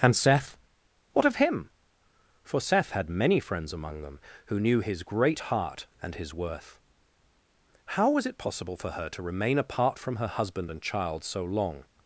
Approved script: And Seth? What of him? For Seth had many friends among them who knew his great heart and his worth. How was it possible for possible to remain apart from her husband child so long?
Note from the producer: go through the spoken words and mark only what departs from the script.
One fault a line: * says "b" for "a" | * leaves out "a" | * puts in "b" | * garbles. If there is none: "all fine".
* says "her" for "possible"
* puts in "and"